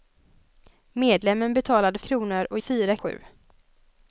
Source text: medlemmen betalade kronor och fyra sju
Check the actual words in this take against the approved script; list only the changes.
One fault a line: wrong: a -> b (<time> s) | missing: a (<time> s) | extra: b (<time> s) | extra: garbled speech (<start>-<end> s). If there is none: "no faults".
no faults